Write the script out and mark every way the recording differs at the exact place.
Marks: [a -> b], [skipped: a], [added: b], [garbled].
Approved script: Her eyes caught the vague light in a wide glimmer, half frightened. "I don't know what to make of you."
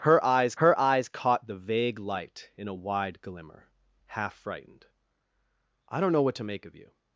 Her eyes [added: her eyes] caught the vague light in a wide glimmer, half frightened. "I don't know what to make of you."